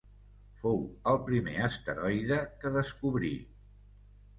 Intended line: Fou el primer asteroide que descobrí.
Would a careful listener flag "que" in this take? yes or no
no